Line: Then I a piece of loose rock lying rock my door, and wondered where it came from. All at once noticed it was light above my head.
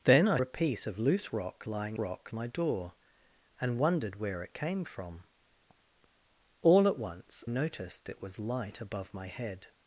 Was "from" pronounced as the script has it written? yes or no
yes